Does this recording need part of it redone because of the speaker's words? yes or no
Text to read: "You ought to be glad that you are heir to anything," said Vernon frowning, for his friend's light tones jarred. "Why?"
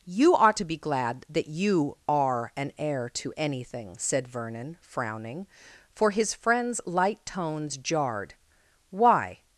yes